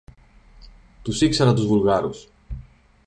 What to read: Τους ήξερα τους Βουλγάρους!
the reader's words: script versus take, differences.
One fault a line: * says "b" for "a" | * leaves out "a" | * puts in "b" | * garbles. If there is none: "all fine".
all fine